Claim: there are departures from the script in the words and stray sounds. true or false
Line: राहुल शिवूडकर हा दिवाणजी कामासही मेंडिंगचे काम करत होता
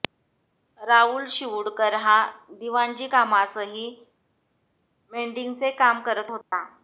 true